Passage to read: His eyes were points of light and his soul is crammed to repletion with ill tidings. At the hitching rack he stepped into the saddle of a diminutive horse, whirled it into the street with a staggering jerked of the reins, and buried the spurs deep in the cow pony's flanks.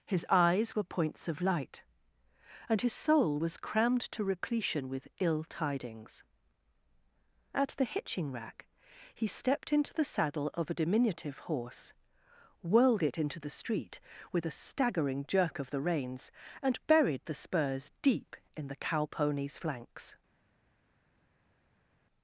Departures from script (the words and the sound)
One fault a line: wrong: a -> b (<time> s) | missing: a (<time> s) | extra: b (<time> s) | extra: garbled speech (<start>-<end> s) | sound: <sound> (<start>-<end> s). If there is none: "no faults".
wrong: is -> was (3.4 s)
wrong: jerked -> jerk (15.3 s)